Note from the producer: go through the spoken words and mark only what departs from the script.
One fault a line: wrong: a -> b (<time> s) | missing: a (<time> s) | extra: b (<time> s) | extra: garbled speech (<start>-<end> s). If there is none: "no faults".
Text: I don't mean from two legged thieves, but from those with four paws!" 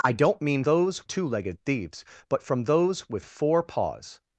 wrong: from -> those (0.6 s)